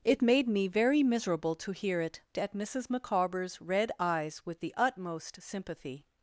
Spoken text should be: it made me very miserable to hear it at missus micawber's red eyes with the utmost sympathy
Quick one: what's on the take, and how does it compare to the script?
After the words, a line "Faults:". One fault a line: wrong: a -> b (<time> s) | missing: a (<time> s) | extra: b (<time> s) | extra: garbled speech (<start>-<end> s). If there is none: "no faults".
it made me very miserable to hear it at missus micawber's red eyes with the utmost sympathy
Faults:
no faults